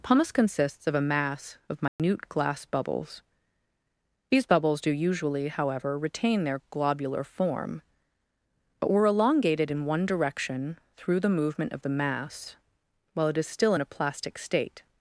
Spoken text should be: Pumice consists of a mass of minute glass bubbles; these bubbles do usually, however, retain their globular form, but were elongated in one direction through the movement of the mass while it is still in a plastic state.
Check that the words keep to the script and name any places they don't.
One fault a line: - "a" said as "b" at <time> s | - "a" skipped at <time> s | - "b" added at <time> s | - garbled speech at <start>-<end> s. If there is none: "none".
none